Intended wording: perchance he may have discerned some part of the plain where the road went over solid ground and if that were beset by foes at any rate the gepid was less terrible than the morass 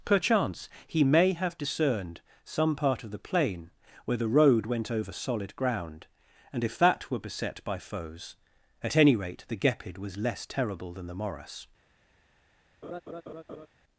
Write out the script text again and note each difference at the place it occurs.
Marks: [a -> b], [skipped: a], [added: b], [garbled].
perchance he may have discerned some part of the plain where the road went over solid ground and if that were beset by foes at any rate the gepid was less terrible than the morass